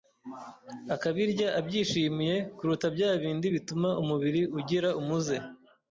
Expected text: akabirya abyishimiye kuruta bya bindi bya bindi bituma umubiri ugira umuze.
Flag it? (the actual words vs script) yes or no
yes